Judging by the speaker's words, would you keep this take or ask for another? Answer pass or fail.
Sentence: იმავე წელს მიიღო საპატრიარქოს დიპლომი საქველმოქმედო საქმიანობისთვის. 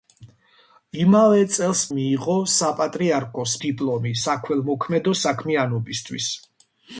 pass